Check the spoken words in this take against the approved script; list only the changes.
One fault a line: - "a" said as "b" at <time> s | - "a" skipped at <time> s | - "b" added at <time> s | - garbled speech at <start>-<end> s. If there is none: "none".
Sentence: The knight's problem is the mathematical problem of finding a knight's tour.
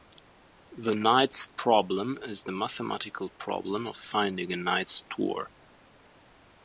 none